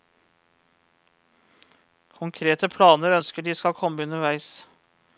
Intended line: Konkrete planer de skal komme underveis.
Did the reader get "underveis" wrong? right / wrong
right